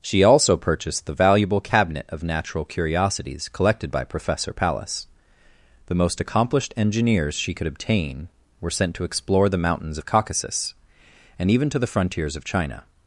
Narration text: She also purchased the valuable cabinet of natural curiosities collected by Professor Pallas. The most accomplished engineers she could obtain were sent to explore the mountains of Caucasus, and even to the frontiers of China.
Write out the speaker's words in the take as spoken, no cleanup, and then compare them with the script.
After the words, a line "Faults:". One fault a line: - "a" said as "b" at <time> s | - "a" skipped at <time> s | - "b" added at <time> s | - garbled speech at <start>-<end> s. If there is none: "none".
She also purchased the valuable cabinet of natural curiosities collected by Professor Pallas. The most accomplished engineers she could obtain were sent to explore the mountains of Caucasus, and even to the frontiers of China.
Faults:
none